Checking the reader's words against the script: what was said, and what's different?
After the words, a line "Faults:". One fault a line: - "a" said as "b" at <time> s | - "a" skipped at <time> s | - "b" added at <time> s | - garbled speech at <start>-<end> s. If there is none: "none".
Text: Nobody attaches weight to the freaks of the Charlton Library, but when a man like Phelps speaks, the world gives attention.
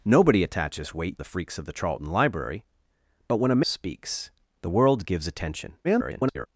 Nobody attaches weight the freaks of the Charlton Library, but when a speaks, the world gives attention. [garbled]
Faults:
- "to" skipped at 1.2 s
- "man like Phelps" skipped at 3.6 s
- garbled speech at 5.8-6.5 s